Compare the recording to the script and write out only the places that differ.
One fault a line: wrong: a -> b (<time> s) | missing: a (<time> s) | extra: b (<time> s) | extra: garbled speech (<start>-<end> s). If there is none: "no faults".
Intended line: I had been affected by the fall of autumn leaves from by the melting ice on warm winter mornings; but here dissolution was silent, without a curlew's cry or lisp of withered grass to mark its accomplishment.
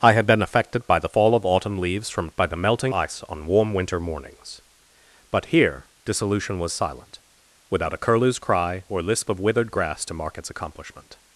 no faults